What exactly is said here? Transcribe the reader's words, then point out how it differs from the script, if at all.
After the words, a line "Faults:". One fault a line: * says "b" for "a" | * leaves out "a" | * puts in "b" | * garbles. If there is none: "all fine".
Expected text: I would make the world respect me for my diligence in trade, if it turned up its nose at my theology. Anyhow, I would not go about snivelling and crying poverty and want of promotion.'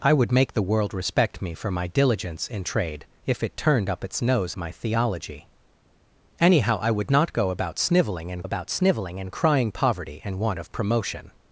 I would make the world respect me for my diligence in trade, if it turned up its nose my theology. Anyhow, I would not go about snivelling and about snivelling and crying poverty and want of promotion.'
Faults:
* leaves out "at"
* puts in "about snivelling and"